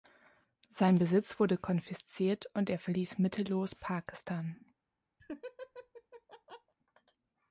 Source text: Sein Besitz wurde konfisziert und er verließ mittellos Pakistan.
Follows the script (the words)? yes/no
yes